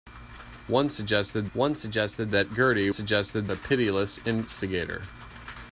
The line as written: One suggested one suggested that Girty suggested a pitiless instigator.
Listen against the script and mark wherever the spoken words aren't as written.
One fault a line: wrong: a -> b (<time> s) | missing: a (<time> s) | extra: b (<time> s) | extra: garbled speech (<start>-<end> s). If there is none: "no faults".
no faults